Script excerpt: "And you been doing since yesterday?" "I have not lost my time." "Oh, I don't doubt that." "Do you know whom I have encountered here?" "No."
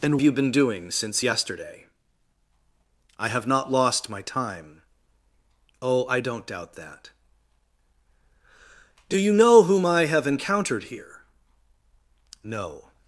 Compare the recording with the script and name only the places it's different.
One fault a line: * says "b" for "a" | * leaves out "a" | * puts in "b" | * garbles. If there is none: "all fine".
all fine